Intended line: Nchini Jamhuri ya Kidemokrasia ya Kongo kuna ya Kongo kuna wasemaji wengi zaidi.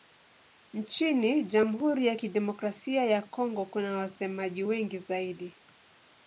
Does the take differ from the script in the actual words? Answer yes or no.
yes